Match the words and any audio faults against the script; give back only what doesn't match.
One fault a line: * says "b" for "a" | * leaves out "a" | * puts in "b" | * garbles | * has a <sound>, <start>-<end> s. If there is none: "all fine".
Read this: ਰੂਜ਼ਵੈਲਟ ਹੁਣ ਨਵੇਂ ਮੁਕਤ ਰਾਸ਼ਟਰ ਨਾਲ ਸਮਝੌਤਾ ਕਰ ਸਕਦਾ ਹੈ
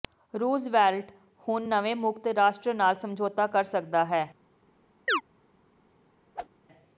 * has a chirp, 5.1-5.2 s
* has a whoosh, 6.3-6.5 s